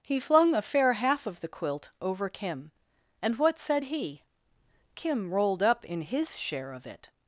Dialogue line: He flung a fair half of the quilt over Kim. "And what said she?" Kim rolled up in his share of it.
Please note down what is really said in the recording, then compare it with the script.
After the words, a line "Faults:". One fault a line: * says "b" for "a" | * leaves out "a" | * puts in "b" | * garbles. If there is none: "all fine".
He flung a fair half of the quilt over Kim. "And what said he?" Kim rolled up in his share of it.
Faults:
* says "he" for "she"